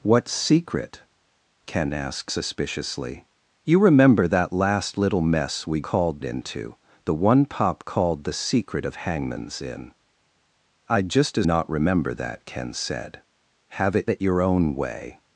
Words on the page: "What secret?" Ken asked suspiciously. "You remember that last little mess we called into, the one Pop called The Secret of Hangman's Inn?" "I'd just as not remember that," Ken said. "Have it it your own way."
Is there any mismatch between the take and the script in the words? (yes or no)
no